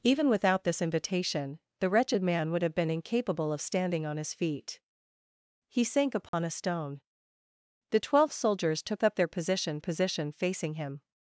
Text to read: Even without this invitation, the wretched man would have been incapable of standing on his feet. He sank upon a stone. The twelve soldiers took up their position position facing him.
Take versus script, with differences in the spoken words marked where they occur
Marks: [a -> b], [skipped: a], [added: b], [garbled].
Even without this invitation, the wretched man would have been incapable of standing on his feet. He sank upon a stone. The twelve soldiers took up their position position facing him.